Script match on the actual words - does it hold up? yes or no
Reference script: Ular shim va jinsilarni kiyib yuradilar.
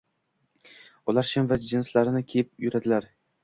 yes